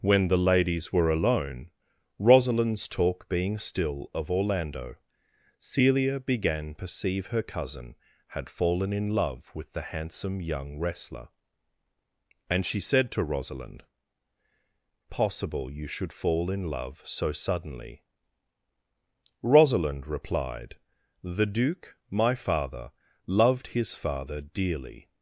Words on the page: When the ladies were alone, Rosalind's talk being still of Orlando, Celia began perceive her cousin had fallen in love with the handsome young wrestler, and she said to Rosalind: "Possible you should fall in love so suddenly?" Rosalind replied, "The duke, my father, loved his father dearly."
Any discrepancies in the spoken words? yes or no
no